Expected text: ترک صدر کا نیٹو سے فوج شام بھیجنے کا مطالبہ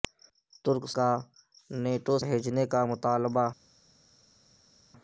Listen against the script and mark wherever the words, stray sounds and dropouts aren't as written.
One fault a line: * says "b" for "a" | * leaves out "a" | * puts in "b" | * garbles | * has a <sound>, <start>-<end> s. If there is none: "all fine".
* leaves out "صدر"
* leaves out "سے فوج شام"